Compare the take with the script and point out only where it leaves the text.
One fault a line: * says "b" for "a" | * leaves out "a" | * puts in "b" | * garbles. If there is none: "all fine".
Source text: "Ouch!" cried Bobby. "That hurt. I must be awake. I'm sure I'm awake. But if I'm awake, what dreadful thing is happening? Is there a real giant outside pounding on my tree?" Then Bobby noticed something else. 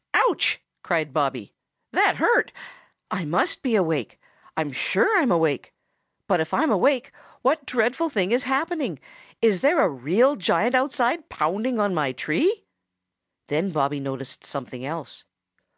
all fine